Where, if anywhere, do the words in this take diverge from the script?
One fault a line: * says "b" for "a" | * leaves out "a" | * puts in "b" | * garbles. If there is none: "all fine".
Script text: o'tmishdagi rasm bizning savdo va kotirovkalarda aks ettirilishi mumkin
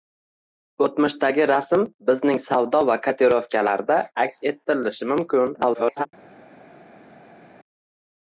* garbles